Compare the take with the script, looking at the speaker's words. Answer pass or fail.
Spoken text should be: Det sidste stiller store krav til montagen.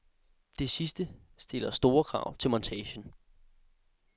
pass